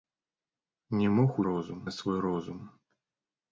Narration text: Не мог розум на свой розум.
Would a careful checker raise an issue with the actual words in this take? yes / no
no